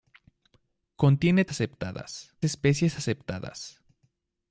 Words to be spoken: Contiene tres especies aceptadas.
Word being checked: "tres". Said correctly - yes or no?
no